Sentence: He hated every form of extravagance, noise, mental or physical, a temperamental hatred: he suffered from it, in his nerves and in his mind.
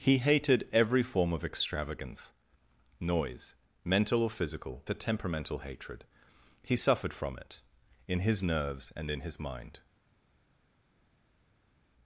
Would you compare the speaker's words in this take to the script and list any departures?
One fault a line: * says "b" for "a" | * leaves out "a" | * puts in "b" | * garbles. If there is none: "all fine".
all fine